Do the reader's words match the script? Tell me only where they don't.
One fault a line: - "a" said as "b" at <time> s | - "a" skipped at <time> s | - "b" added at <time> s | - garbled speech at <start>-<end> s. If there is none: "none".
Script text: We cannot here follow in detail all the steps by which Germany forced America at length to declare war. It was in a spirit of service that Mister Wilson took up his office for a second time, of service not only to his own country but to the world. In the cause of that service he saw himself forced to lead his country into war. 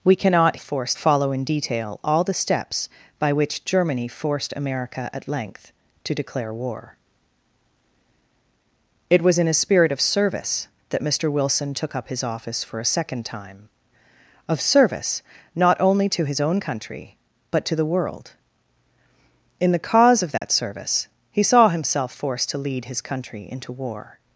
- "here" said as "forced" at 0.6 s